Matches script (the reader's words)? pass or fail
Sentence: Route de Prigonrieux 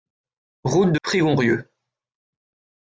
pass